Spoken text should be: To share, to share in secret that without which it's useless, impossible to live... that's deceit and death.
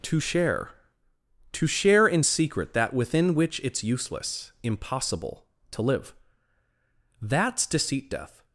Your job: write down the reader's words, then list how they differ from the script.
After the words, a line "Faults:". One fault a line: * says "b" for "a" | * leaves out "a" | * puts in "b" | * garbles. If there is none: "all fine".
To share, to share in secret that within which it's useless, impossible to live... that's deceit death.
Faults:
* says "within" for "without"
* leaves out "and"